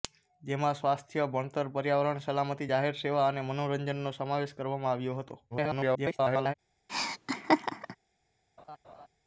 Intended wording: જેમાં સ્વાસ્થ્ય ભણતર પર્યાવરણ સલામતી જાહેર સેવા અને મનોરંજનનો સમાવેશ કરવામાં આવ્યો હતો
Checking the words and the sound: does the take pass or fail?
fail